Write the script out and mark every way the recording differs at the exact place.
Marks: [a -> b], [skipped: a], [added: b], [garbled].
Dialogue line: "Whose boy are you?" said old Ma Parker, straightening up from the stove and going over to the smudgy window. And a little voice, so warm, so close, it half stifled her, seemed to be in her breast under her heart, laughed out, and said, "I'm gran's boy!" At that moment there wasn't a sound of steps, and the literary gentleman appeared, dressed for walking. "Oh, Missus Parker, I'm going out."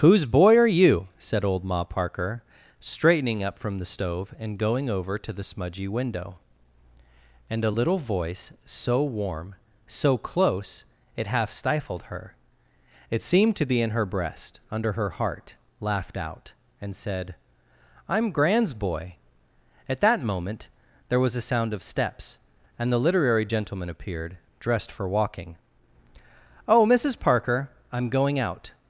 "Whose boy are you?" said old Ma Parker, straightening up from the stove and going over to the smudgy window. And a little voice, so warm, so close, it half stifled her, [added: it] seemed to be in her breast under her heart, laughed out, and said, "I'm gran's boy!" At that moment there [wasn't -> was] a sound of steps, and the literary gentleman appeared, dressed for walking. "Oh, Missus Parker, I'm going out."